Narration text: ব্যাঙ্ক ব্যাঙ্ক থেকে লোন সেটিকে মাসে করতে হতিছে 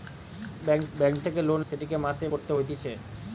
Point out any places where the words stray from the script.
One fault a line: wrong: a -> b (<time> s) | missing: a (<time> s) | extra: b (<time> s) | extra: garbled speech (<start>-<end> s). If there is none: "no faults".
no faults